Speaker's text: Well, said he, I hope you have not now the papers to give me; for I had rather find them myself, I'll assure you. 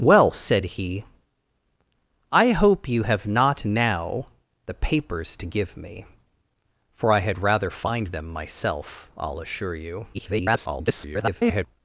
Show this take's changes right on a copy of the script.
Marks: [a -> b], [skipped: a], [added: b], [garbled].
Well, said he, I hope you have not now the papers to give me; for I had rather find them myself, I'll assure you. [garbled]